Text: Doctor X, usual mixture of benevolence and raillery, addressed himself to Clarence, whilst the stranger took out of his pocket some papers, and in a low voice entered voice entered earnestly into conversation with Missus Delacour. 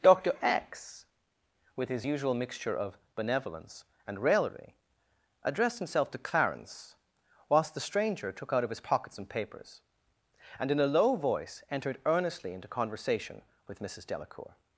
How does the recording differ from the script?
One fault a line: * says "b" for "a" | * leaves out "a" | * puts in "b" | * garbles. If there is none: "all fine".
* puts in "with his"
* leaves out "voice entered"